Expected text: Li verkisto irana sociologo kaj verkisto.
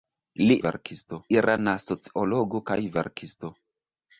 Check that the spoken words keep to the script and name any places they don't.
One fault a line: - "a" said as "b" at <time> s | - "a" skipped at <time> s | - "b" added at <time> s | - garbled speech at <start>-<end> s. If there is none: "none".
none